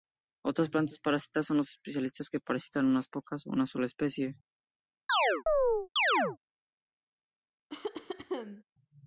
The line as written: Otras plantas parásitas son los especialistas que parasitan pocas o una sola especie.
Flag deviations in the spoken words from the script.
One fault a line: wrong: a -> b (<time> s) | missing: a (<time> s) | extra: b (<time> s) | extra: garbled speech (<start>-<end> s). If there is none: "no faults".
extra: unas (2.9 s)